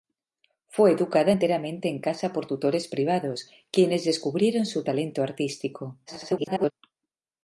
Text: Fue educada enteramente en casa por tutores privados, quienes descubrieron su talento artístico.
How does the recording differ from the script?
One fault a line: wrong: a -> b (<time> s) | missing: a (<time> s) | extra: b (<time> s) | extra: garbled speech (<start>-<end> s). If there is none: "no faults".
extra: garbled speech (6.1-6.7 s)